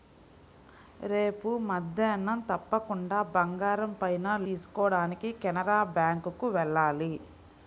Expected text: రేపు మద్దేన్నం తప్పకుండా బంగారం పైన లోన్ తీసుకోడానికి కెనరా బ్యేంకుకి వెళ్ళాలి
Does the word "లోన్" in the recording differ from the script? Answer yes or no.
yes